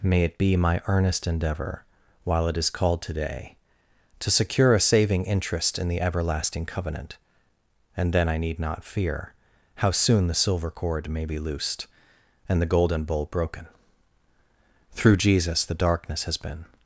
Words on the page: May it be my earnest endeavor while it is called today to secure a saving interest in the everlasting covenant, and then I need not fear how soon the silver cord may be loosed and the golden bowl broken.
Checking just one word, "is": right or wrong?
right